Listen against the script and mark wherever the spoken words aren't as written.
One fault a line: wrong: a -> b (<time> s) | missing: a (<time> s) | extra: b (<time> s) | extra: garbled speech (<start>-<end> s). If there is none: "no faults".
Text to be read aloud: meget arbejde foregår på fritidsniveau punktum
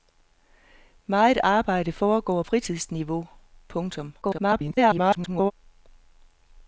missing: på (2.4 s)
extra: garbled speech (4.2-5.5 s)